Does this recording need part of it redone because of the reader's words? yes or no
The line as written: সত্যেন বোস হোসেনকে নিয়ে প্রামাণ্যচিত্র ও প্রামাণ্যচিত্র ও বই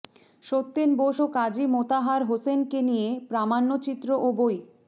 yes